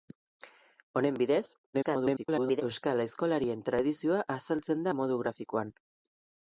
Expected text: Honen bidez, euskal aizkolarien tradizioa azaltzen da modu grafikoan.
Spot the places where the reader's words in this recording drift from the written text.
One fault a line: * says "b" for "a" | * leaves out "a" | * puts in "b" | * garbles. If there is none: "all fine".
* garbles